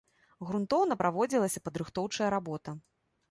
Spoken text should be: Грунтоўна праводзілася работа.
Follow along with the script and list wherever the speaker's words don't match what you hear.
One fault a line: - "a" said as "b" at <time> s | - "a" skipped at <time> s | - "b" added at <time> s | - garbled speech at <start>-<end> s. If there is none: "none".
- "падрыхтоўчая" added at 1.7 s